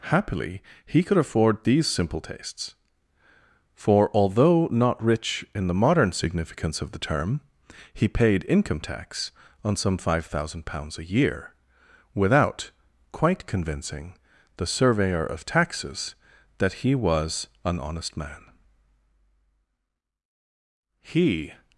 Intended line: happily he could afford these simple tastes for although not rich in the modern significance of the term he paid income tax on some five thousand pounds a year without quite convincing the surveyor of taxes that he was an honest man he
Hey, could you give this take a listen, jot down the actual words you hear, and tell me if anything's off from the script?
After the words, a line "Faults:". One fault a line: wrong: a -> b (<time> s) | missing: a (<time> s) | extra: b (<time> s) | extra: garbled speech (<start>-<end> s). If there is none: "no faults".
happily he could afford these simple tastes for although not rich in the modern significance of the term he paid income tax on some five thousand pounds a year without quite convincing the surveyor of taxes that he was an honest man he
Faults:
no faults